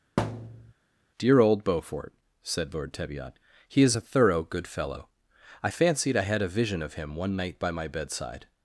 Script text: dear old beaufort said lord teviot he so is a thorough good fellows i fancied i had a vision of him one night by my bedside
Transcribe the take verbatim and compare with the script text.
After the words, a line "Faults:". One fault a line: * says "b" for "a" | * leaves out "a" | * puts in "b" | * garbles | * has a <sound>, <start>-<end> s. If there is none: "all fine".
dear old beaufort said lord teviot he is a thorough good fellow i fancied i had a vision of him one night by my bedside
Faults:
* has a thud, 0.2-0.7 s
* leaves out "so"
* says "fellow" for "fellows"